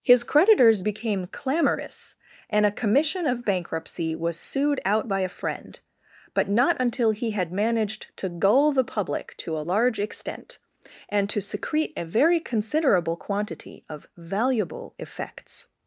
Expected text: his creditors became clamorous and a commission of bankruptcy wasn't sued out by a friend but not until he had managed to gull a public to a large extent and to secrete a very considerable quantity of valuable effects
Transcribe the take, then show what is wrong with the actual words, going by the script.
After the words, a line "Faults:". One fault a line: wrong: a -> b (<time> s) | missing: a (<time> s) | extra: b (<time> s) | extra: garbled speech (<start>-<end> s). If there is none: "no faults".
his creditors became clamorous and a commission of bankruptcy was sued out by a friend but not until he had managed to gull the public to a large extent and to secrete a very considerable quantity of valuable effects
Faults:
wrong: wasn't -> was (4.1 s)
wrong: a -> the (8.7 s)